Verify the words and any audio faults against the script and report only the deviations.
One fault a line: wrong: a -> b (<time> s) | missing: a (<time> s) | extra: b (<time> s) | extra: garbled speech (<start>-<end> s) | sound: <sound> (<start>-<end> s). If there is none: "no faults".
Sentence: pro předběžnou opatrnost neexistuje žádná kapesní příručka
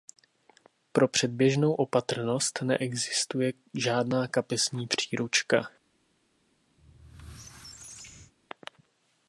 sound: squeak (6.8-8.3 s)